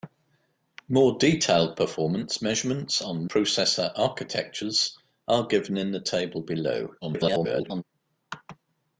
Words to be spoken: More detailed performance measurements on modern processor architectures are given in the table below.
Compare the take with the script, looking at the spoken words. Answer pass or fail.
fail